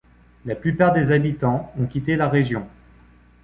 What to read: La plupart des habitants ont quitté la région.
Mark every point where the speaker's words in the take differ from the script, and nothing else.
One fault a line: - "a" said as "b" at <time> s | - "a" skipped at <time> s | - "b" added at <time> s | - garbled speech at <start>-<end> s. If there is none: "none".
none